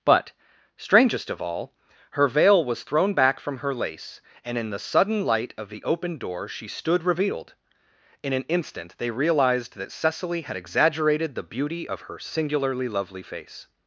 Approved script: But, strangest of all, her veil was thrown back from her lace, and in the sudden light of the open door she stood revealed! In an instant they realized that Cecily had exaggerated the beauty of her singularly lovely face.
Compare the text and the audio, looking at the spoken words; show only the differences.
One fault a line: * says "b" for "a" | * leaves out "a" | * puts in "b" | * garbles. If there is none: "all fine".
all fine